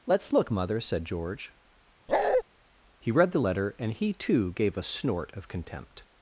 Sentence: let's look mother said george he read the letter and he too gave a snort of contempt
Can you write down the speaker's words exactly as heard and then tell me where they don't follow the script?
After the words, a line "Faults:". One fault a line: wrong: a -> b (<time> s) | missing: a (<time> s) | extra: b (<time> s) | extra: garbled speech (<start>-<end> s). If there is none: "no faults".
let's look mother said george he read the letter and he too gave a snort of contempt
Faults:
no faults